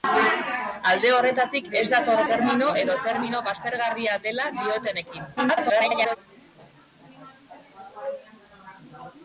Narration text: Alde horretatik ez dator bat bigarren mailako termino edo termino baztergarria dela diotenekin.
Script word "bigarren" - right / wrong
wrong